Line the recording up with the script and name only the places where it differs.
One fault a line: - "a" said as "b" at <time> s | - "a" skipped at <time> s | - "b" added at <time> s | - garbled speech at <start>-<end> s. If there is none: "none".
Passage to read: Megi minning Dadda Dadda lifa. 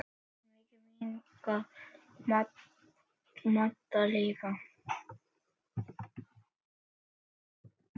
- "Dadda" skipped at 4.0 s